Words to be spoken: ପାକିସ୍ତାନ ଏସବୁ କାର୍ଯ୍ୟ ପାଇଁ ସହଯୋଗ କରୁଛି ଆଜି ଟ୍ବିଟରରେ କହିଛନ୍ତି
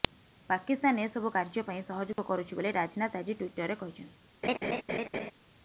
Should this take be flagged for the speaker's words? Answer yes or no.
yes